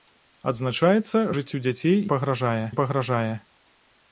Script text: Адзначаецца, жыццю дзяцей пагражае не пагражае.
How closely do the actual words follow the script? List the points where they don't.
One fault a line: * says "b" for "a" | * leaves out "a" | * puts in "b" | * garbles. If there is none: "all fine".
all fine